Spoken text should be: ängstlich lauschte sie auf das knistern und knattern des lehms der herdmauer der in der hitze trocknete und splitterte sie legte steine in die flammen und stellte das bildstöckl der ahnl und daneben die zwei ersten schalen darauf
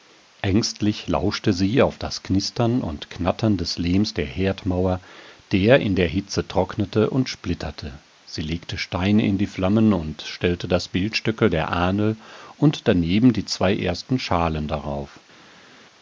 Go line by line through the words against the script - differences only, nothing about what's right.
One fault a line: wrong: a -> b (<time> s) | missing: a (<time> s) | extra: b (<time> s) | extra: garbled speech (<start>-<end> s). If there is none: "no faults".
no faults